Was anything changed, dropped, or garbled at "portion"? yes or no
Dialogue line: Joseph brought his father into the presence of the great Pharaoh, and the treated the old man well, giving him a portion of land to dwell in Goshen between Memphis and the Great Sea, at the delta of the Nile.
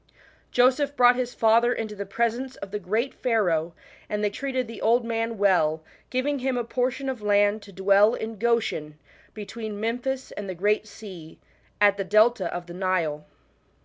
no